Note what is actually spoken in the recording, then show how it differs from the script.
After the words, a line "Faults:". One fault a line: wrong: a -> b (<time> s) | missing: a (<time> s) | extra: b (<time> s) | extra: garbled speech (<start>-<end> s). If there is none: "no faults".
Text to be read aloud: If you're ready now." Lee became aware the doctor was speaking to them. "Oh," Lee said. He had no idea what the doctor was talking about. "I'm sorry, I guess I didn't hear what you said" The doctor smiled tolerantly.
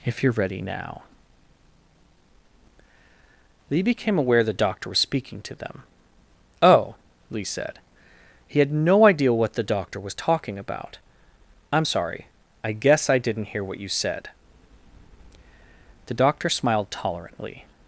If you're ready now." Lee became aware the doctor was speaking to them. "Oh," Lee said. He had no idea what the doctor was talking about. "I'm sorry, I guess I didn't hear what you said" The doctor smiled tolerantly.
Faults:
no faults